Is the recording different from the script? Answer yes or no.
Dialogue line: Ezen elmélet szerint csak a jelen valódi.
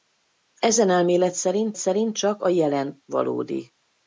yes